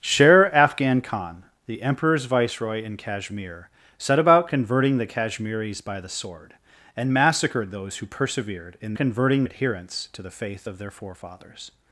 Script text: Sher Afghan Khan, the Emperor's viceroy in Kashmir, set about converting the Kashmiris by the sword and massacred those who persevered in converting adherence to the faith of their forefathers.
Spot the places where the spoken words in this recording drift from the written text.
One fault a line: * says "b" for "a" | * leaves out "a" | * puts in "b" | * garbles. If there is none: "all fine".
all fine